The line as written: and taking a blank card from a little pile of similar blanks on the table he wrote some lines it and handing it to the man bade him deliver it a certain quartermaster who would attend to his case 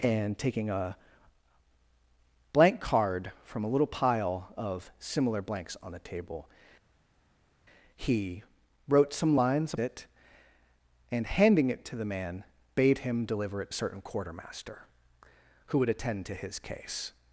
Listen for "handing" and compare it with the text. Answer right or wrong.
right